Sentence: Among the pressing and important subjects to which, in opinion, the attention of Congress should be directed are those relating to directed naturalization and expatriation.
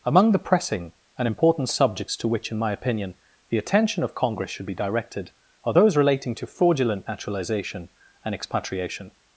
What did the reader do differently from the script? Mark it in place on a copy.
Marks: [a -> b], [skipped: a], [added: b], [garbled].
Among the pressing and important subjects to which, in [added: my] opinion, the attention of Congress should be directed are those relating to [directed -> fraudulent] naturalization and expatriation.